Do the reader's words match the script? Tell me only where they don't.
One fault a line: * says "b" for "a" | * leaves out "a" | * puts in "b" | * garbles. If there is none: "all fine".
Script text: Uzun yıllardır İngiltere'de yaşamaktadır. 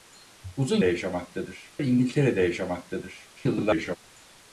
* says "yaşamaktadır" for "yıllardır"
* garbles